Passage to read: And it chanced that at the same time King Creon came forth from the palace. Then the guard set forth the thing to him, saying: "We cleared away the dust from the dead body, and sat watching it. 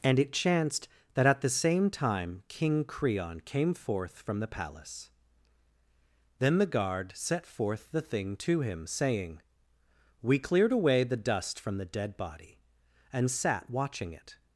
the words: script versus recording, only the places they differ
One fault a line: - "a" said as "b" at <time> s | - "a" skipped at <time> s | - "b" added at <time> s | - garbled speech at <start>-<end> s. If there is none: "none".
none